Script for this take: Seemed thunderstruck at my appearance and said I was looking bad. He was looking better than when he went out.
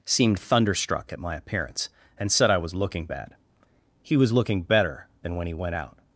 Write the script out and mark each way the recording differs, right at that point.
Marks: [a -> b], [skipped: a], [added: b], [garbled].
Seemed thunderstruck at my appearance and said I was looking bad. He was looking better than when he went out.